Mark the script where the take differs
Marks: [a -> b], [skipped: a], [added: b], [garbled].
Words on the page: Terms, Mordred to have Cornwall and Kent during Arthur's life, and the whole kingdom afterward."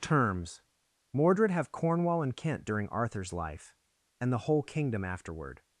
Terms, Mordred [skipped: to] have Cornwall and Kent during Arthur's life, and the whole kingdom afterward."